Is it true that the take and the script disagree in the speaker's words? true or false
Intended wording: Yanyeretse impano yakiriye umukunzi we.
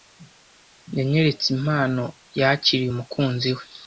false